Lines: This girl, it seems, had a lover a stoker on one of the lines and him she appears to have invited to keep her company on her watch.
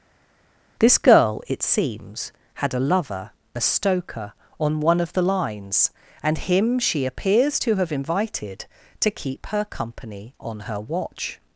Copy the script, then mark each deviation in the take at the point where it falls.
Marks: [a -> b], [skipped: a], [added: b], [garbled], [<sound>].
This girl, it seems, had a lover a stoker on one of the lines and him she appears to have invited to keep her company on her watch.